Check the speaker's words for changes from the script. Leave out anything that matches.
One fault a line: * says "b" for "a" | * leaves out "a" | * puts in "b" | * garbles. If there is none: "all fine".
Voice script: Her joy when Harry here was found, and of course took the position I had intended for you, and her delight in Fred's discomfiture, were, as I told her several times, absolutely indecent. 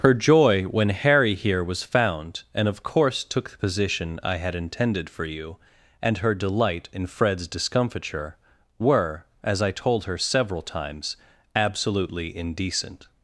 all fine